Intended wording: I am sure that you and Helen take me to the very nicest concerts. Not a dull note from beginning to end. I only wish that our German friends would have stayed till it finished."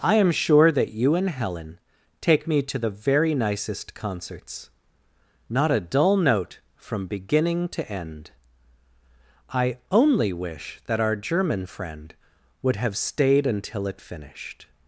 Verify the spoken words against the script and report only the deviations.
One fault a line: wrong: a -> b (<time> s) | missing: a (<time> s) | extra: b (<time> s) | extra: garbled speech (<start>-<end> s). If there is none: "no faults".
wrong: friends -> friend (11.7 s)
wrong: till -> until (13.4 s)